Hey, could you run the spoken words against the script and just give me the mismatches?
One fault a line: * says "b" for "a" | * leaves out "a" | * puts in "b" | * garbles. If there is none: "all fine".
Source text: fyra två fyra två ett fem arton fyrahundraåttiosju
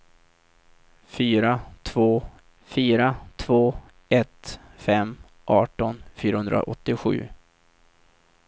all fine